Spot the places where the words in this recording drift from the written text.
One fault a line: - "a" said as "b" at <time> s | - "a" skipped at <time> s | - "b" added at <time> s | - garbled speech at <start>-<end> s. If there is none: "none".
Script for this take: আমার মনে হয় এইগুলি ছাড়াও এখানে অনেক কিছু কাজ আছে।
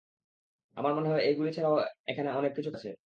- "কাজ" skipped at 2.7 s